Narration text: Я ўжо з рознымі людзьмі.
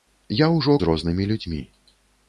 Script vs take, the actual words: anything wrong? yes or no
no